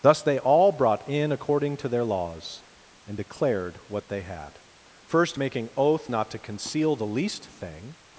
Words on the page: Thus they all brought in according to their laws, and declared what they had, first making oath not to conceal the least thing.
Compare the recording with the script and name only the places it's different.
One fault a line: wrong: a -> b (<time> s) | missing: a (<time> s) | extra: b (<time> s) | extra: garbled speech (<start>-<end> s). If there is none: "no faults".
no faults